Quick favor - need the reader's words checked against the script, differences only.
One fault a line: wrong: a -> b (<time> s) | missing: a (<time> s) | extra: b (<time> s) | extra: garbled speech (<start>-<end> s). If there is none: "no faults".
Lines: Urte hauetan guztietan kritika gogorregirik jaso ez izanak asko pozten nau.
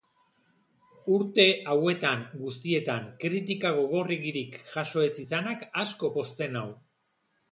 no faults